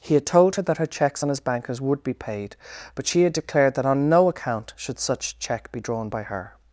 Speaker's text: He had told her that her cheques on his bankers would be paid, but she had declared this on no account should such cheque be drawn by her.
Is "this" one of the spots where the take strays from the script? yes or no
yes